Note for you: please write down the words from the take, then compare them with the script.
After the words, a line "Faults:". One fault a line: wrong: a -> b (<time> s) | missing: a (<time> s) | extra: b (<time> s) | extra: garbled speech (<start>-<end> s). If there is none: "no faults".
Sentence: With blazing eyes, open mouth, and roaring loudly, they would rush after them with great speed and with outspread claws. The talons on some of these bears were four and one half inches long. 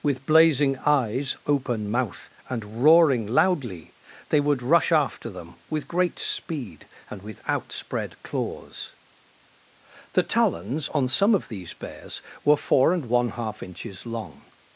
With blazing eyes, open mouth, and roaring loudly, they would rush after them with great speed and with outspread claws. The talons on some of these bears were four and one half inches long.
Faults:
no faults